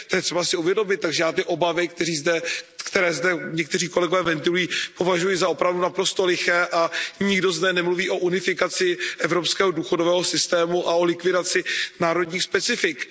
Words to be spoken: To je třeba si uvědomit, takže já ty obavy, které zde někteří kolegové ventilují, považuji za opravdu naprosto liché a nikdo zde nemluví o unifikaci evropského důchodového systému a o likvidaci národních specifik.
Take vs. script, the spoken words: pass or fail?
pass